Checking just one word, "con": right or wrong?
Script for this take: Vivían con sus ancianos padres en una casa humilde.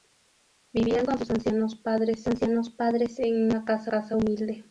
right